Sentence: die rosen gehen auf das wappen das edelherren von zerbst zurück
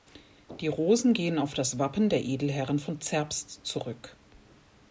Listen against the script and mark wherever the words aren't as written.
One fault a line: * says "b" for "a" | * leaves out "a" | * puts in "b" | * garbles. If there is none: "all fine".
* says "der" for "das"